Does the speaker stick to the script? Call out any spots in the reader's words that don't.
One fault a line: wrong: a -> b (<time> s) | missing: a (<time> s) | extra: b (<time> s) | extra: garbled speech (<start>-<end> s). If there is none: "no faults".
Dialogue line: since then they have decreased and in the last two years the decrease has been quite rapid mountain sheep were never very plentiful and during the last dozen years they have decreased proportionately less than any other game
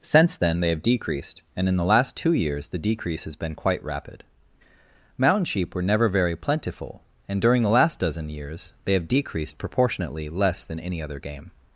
no faults